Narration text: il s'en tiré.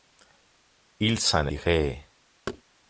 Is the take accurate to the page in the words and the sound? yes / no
no